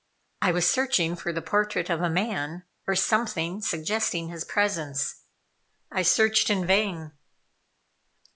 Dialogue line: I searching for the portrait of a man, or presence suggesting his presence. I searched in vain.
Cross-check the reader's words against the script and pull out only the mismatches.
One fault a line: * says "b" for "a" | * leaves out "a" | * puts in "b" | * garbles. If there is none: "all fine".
* puts in "was"
* says "something" for "presence"